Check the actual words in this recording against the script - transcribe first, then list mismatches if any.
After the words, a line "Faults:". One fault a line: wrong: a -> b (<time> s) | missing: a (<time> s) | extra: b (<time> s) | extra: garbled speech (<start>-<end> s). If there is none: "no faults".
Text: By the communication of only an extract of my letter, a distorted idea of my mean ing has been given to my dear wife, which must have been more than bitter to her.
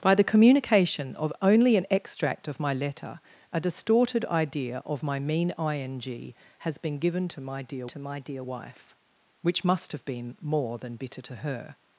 By the communication of only an extract of my letter, a distorted idea of my mean ing has been given to my dear to my dear wife, which must have been more than bitter to her.
Faults:
extra: to my dear (7.9 s)